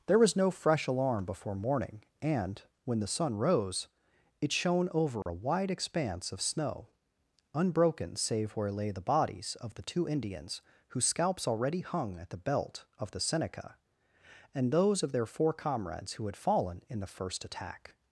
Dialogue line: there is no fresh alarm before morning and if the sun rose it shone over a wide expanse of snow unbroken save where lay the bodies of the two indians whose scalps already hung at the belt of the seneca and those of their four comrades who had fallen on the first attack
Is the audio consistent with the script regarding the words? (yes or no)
no